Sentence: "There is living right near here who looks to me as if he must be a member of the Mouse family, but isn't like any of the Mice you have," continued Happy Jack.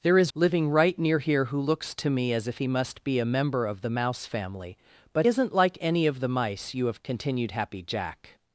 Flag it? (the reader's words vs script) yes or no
no